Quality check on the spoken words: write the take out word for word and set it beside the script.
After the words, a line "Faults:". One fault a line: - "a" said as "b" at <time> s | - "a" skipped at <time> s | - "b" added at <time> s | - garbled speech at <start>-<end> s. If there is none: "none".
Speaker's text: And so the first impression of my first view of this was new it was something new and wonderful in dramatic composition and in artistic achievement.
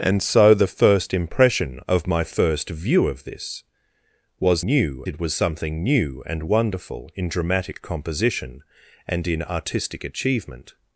And so the first impression of my first view of this was new it was something new and wonderful in dramatic composition and in artistic achievement.
Faults:
none